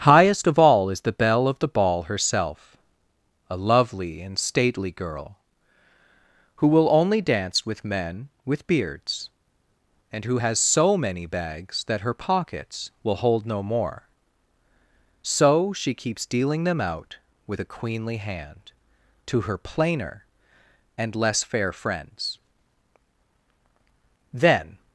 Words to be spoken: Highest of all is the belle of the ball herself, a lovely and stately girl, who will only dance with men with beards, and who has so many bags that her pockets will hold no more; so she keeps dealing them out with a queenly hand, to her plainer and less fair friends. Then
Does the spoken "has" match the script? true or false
true